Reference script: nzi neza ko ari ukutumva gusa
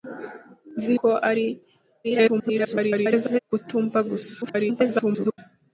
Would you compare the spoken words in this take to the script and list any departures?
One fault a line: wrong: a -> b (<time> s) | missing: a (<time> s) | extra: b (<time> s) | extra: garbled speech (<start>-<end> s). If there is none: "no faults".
missing: neza (0.9 s)
extra: garbled speech (2.0-3.4 s)
extra: garbled speech (4.4-5.4 s)